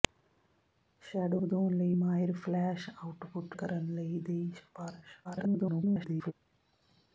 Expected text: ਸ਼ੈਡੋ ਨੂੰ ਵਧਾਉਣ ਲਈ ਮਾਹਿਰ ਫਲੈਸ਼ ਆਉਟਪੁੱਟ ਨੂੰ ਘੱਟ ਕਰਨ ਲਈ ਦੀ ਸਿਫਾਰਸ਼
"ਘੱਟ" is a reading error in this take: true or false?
true